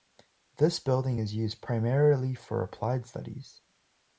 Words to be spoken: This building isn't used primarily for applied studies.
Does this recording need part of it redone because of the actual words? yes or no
yes